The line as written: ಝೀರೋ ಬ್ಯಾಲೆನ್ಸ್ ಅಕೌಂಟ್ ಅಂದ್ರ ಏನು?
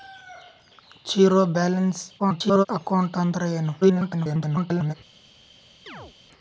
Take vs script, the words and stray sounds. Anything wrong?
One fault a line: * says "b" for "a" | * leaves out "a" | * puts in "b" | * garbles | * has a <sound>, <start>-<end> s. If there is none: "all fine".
* garbles
* garbles
* has a chirp, 5.9-6.1 s